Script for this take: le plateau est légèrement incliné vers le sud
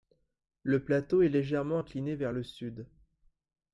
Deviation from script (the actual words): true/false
false